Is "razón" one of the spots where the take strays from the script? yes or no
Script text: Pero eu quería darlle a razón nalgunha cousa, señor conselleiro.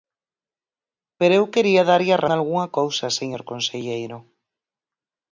yes